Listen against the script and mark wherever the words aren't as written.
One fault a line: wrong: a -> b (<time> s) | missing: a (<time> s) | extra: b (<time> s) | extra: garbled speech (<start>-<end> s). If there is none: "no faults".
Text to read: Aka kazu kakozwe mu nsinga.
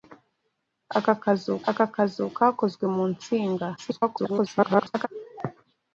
extra: aka kazu (1.7 s)
extra: garbled speech (3.8-5.1 s)